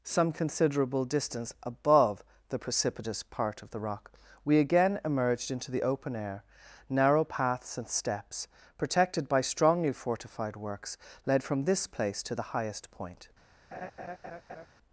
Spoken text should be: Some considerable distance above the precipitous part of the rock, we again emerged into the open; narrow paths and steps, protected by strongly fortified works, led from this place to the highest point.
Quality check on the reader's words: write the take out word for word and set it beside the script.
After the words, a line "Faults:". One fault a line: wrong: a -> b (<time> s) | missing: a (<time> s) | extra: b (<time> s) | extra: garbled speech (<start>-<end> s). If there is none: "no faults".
Some considerable distance above the precipitous part of the rock, we again emerged into the open air; narrow paths and steps, protected by strongly fortified works, led from this place to the highest point.
Faults:
extra: air (6.2 s)